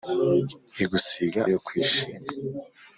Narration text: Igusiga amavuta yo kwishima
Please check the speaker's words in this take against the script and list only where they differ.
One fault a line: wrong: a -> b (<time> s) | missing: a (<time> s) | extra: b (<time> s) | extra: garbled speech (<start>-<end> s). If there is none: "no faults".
missing: amavuta (1.4 s)